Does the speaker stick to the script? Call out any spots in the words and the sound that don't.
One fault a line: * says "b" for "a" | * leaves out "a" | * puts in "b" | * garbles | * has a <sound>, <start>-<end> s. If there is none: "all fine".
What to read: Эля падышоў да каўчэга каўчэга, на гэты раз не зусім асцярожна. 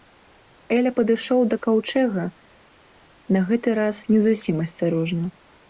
* leaves out "каўчэга"